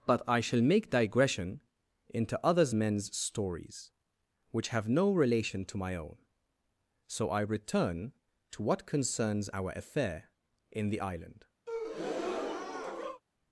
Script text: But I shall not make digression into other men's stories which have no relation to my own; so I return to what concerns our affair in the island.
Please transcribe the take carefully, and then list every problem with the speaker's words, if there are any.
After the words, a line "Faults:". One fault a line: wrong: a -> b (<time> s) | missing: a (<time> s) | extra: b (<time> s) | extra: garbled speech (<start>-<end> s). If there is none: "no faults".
But I shall make digression into others men's stories which have no relation to my own; so I return to what concerns our affair in the island.
Faults:
missing: not (0.6 s)
wrong: other -> others (2.4 s)